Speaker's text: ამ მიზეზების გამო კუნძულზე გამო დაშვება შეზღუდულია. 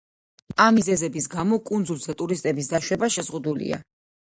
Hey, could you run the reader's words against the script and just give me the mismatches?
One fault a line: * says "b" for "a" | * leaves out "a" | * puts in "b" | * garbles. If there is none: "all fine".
* says "ტურისტების" for "გამო"